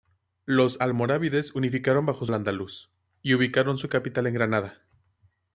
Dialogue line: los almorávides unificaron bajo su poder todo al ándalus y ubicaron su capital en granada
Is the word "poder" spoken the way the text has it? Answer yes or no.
no